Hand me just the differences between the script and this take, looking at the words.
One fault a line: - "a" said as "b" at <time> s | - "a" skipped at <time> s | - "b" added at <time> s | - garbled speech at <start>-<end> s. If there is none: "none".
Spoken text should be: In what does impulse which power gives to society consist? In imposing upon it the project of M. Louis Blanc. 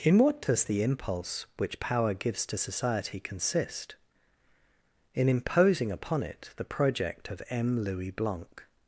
- "the" added at 0.6 s